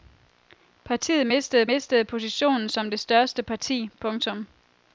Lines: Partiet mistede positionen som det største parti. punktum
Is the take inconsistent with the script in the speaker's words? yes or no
yes